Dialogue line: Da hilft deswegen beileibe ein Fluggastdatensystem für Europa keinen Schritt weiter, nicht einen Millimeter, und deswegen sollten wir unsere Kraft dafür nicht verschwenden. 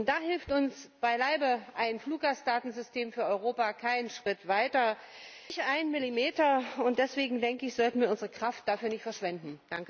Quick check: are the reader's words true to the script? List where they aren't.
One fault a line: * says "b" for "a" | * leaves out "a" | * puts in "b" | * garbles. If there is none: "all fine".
* says "uns" for "deswegen"